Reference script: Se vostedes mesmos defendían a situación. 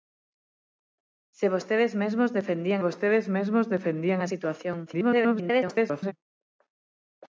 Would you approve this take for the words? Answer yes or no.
no